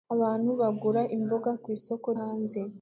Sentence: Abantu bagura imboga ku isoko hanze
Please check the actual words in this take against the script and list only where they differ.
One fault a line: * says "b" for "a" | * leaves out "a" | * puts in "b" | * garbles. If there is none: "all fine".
all fine